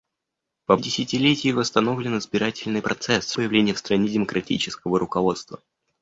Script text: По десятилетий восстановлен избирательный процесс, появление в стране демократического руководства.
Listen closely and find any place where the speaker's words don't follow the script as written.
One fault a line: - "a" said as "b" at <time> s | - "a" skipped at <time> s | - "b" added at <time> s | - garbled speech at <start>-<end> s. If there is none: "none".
none